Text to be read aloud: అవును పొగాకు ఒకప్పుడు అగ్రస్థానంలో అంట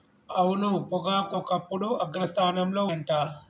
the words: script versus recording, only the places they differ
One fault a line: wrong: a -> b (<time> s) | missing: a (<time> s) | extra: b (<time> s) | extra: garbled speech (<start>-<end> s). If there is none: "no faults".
no faults